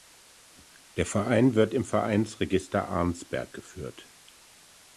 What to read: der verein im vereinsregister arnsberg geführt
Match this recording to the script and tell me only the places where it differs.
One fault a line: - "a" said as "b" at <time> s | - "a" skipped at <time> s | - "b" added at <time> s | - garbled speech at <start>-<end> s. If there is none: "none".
- "wird" added at 1.5 s